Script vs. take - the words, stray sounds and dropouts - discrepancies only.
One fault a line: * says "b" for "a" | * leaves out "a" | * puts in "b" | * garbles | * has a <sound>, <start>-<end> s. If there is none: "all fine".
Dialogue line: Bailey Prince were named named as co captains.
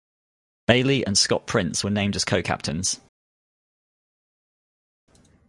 * puts in "and Scott"
* leaves out "named"